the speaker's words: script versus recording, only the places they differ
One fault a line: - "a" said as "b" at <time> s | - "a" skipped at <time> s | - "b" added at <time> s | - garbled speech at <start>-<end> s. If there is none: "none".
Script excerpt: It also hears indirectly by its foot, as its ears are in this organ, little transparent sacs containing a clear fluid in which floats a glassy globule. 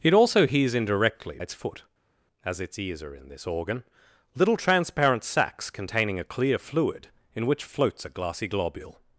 - "by" skipped at 1.4 s